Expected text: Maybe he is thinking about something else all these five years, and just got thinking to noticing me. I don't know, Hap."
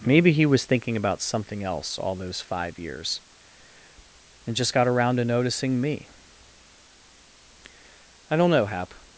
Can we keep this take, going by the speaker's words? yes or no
no